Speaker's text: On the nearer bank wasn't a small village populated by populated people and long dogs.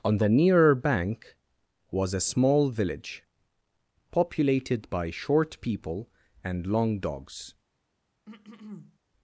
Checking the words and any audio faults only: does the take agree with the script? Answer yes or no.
no